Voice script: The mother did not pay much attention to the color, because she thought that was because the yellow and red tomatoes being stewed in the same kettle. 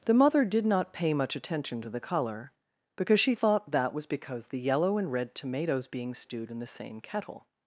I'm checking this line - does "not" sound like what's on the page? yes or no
yes